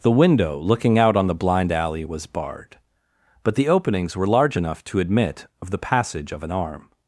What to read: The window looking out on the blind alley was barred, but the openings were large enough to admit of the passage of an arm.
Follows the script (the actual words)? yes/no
yes